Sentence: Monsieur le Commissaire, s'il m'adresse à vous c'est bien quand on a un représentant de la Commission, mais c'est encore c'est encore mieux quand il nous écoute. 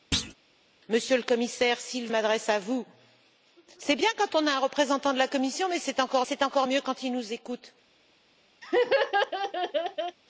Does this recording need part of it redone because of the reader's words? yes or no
no